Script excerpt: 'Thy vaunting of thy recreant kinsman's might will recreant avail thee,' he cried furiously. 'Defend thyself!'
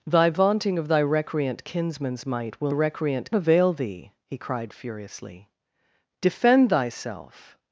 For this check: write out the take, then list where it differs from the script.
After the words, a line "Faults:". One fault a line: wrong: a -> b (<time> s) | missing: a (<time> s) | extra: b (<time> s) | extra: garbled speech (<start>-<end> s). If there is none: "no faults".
'Thy vaunting of thy recreant kinsman's might will recreant avail thee,' he cried furiously. 'Defend thyself!'
Faults:
no faults